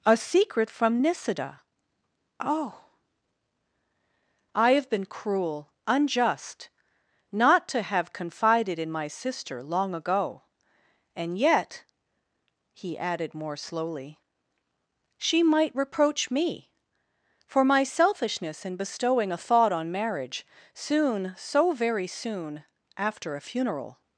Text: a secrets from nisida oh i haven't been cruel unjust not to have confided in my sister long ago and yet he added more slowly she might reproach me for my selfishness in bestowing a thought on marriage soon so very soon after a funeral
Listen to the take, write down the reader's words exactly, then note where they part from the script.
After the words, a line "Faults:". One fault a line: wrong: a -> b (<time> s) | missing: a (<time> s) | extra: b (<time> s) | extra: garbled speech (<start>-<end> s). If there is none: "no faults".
a secret from nisida oh i have been cruel unjust not to have confided in my sister long ago and yet he added more slowly she might reproach me for my selfishness in bestowing a thought on marriage soon so very soon after a funeral
Faults:
wrong: secrets -> secret (0.2 s)
wrong: haven't -> have (4.7 s)